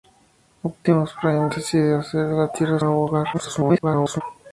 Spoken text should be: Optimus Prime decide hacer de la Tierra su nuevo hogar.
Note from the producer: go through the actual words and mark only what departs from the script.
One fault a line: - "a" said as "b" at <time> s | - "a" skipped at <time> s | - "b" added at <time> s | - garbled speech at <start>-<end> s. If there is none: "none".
- "su" skipped at 2.8 s
- garbled speech at 3.3-4.2 s